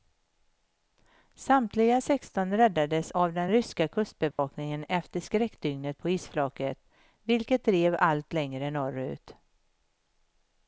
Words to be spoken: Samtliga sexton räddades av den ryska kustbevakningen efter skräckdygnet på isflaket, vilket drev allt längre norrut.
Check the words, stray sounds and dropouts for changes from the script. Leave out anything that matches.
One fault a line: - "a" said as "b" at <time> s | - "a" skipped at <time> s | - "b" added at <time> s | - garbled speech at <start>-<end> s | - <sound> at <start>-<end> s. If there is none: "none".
- dropout at 4.3-4.4 s